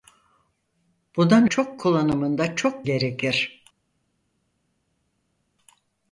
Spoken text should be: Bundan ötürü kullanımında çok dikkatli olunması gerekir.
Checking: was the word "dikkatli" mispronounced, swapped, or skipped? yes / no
yes